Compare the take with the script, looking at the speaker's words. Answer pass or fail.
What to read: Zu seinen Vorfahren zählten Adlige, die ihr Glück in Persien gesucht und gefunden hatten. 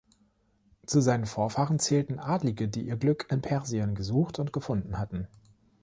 pass